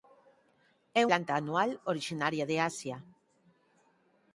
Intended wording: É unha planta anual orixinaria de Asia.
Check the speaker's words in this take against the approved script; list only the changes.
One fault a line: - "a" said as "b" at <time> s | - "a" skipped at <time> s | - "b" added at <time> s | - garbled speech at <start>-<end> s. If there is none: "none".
- "unha" skipped at 1.0 s